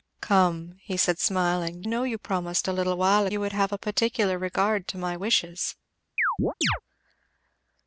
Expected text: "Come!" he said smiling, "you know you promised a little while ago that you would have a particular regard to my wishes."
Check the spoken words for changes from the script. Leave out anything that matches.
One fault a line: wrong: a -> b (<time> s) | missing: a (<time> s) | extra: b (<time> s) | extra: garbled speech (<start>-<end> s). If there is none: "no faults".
missing: you (1.8 s)
missing: ago that (3.3 s)